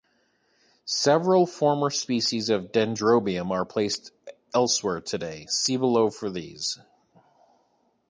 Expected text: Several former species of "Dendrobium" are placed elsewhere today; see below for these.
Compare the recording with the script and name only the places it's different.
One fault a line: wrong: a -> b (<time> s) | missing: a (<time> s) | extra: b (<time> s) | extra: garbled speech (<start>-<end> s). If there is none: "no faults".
no faults